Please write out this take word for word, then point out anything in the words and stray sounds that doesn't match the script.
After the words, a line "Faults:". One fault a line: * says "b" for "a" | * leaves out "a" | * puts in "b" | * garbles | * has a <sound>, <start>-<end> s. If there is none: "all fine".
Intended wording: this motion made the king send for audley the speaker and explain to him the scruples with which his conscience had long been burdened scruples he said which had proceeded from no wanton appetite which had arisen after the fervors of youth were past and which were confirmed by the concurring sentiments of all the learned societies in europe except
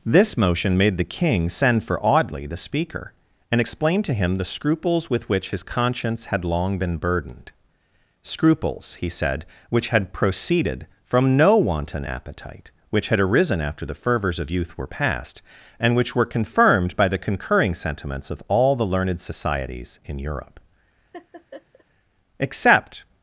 this motion made the king send for audley the speaker and explain to him the scruples with which his conscience had long been burdened scruples he said which had proceeded from no wanton appetite which had arisen after the fervors of youth were past and which were confirmed by the concurring sentiments of all the learned societies in europe except
Faults:
* has a laugh, 21.1-21.8 s